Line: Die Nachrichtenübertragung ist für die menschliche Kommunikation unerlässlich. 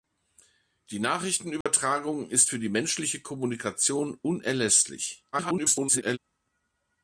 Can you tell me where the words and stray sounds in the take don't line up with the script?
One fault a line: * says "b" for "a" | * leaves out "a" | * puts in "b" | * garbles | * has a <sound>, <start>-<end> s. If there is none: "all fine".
* has a dropout, 1.6-1.7 s
* garbles